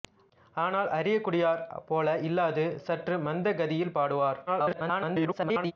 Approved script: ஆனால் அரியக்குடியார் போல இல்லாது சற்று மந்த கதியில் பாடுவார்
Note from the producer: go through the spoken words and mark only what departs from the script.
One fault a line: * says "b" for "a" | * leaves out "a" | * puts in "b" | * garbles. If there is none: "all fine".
* garbles